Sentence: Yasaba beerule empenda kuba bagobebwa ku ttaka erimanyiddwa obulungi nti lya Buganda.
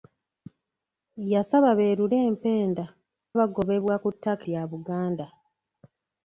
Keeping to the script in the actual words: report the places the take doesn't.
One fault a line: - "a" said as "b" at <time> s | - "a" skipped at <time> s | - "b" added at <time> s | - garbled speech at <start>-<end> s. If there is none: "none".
- "kuba" skipped at 2.9 s
- "erimanyiddwa obulungi nti" skipped at 4.4 s